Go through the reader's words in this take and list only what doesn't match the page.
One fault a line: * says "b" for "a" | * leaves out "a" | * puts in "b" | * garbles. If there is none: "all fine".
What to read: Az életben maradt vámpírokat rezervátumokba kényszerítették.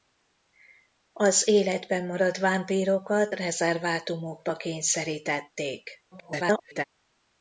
* garbles